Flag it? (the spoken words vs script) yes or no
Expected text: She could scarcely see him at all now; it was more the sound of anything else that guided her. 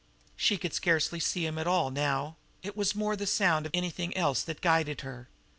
no